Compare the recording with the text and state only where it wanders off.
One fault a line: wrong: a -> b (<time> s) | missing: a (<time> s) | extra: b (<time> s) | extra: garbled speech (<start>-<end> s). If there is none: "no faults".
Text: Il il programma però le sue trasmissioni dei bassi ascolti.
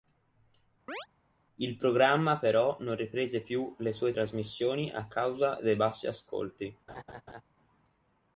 missing: il (1.7 s)
extra: non riprese più (2.8 s)
extra: a causa (4.9 s)